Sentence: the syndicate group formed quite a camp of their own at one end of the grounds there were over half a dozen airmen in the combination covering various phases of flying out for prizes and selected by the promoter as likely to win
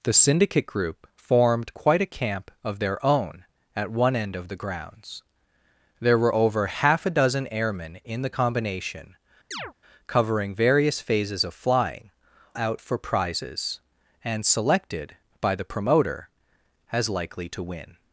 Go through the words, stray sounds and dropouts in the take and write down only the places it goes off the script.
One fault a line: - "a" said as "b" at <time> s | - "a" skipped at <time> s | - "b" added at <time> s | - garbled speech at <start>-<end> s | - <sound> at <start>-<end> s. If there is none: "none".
- chirp at 9.5-9.7 s